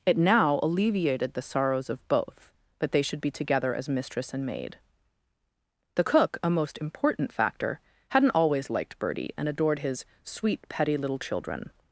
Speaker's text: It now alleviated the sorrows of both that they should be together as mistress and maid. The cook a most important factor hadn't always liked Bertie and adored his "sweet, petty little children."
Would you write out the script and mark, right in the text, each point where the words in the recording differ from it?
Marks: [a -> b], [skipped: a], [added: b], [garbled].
It now alleviated the sorrows of both that they should be together as mistress and maid. The cook a most important factor hadn't always liked Bertie and adored his "sweet, petty little children."